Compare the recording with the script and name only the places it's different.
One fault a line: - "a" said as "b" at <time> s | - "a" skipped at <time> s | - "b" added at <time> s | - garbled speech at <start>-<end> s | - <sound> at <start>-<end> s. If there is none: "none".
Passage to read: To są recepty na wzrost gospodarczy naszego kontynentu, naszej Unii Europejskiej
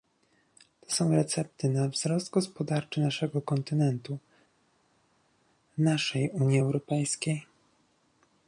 none